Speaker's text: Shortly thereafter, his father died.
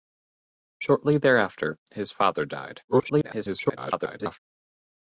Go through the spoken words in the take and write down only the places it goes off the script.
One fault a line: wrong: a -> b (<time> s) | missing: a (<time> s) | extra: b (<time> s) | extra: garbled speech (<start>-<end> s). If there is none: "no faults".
extra: garbled speech (2.9-4.4 s)